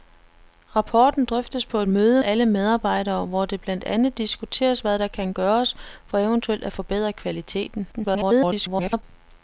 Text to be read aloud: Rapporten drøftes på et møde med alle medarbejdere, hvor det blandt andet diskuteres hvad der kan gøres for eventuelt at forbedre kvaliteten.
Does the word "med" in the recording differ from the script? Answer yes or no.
yes